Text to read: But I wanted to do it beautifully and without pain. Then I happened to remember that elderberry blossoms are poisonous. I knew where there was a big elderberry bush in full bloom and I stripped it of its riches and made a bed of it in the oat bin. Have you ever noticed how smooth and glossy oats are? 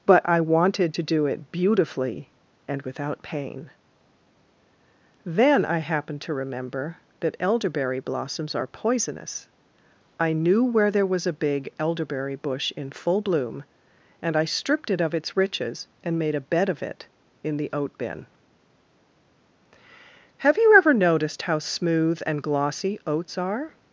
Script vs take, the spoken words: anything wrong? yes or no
no